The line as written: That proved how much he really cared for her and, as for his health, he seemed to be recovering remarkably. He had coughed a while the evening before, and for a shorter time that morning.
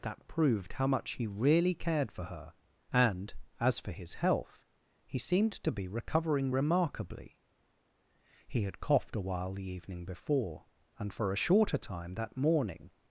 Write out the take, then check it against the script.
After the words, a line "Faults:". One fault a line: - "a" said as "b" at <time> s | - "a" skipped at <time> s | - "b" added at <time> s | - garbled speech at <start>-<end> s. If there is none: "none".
That proved how much he really cared for her and, as for his health, he seemed to be recovering remarkably. He had coughed a while the evening before, and for a shorter time that morning.
Faults:
none